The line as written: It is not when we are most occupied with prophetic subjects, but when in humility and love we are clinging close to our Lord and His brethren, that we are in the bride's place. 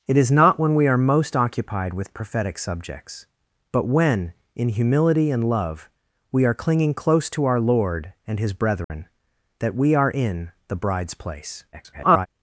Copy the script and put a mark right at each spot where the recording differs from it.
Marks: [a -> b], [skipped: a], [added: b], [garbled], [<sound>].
It is not when we are most occupied with prophetic subjects, but when in humility and love we are clinging close to our Lord and His brethren, [dropout] that we are in the bride's place. [garbled]